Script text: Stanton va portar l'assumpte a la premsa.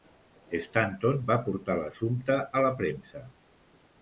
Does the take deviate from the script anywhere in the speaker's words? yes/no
no